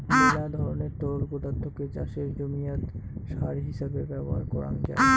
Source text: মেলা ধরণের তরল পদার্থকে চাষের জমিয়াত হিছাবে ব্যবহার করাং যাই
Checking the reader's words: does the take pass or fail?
fail